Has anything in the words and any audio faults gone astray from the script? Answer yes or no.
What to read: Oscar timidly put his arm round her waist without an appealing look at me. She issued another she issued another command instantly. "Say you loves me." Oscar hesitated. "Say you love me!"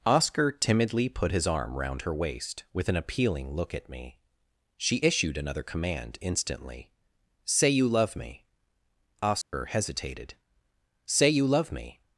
yes